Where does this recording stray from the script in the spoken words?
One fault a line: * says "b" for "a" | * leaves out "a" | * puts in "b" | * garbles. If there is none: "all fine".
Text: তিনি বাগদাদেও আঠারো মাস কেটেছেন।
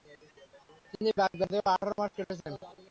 all fine